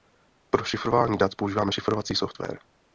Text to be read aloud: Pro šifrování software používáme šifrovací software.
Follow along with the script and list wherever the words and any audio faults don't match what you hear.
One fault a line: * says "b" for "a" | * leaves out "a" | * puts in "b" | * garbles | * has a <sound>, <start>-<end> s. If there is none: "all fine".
* says "dat" for "software"